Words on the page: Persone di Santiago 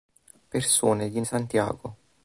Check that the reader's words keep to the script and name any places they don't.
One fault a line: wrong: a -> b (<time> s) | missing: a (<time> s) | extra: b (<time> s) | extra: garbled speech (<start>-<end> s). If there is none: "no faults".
no faults